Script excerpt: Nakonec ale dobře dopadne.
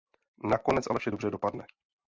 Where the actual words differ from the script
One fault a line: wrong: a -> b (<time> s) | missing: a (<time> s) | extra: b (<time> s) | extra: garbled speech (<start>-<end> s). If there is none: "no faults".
extra: vše (1.0 s)